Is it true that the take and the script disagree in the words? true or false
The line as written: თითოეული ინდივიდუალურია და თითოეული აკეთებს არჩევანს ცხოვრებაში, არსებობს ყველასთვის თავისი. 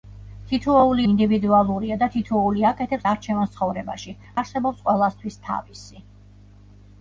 false